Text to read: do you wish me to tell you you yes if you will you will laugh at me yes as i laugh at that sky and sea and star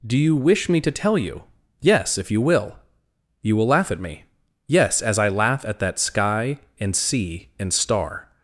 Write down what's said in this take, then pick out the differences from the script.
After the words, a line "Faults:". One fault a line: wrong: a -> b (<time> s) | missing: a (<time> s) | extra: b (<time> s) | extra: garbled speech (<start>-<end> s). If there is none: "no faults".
do you wish me to tell you yes if you will you will laugh at me yes as i laugh at that sky and sea and star
Faults:
missing: you (1.4 s)